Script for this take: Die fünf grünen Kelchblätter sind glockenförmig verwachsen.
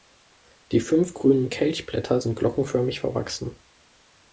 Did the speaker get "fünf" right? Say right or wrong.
right